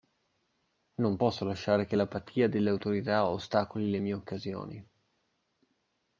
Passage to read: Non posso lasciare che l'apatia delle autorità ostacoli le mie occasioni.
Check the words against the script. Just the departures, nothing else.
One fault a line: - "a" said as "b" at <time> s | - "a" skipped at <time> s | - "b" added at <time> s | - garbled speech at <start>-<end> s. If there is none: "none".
none